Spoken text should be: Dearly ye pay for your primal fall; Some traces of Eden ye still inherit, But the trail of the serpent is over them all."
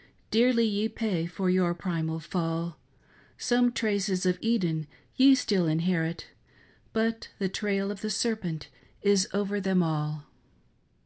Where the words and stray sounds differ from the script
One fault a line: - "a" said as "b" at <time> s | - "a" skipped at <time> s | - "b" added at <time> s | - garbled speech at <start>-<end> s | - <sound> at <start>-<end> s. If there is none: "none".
none